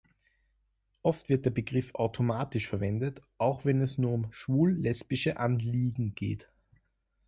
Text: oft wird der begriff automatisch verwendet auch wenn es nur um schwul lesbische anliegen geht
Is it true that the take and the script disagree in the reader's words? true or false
false